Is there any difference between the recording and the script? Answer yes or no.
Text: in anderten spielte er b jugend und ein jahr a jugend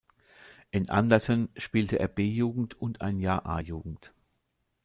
no